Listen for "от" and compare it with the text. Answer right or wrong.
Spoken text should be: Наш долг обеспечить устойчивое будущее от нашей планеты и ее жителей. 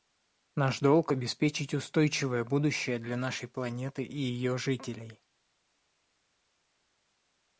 wrong